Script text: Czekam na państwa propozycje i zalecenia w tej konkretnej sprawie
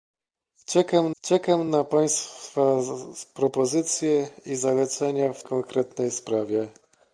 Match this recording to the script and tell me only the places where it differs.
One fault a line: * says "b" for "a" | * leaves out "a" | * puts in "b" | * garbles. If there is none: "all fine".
* puts in "czekam"
* leaves out "tej"